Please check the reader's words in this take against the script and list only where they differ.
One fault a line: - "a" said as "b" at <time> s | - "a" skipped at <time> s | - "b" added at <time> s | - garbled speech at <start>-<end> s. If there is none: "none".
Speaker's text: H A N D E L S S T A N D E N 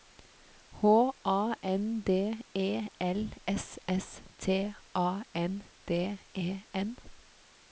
none